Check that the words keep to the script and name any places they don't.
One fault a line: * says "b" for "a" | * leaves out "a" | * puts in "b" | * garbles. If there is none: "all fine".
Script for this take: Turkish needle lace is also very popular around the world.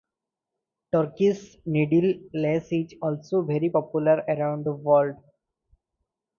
all fine